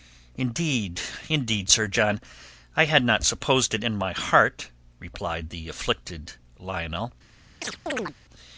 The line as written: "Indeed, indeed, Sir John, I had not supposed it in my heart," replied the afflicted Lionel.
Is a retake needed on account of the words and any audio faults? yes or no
yes